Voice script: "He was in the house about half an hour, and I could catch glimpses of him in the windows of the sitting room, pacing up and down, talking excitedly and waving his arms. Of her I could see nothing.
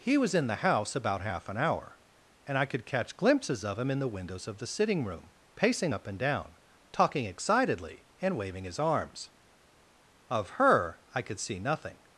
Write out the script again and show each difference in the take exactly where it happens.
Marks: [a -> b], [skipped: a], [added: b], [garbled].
"He was in the house about half an hour, and I could catch glimpses of him in the windows of the sitting room, pacing up and down, talking excitedly and waving his arms. Of her I could see nothing.